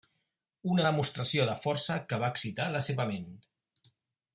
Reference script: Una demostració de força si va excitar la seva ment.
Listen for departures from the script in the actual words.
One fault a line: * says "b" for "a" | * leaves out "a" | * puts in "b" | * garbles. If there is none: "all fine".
* says "que" for "si"